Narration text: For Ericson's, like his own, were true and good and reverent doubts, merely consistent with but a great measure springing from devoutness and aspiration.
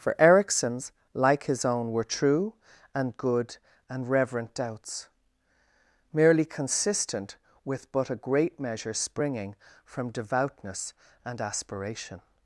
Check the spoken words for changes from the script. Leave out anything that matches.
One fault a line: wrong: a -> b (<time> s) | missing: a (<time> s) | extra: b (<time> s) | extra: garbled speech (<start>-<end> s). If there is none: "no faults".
no faults